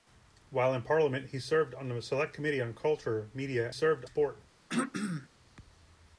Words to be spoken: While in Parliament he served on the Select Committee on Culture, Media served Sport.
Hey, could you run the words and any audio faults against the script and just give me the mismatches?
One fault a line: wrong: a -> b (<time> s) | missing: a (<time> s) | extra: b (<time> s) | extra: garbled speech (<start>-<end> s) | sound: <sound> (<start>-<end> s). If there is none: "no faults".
sound: throat clearing (4.7-5.3 s)